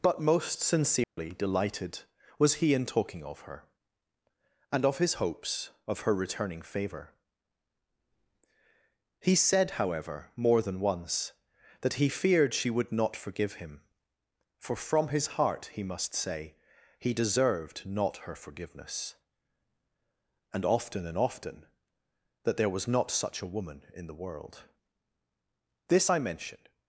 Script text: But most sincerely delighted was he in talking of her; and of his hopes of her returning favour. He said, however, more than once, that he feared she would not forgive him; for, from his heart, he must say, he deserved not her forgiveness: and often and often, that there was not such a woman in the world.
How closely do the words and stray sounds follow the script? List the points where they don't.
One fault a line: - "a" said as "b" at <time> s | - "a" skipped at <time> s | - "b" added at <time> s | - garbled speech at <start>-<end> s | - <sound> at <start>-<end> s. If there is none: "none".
- dropout at 1.0-1.2 s
- "This I mention" added at 25.9 s